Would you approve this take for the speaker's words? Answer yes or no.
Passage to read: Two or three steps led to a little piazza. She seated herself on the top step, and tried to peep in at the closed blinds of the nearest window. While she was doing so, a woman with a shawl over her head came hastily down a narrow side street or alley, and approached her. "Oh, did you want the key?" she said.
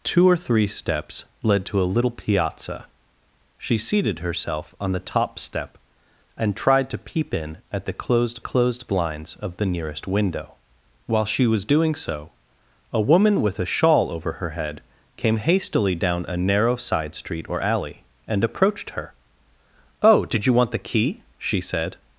no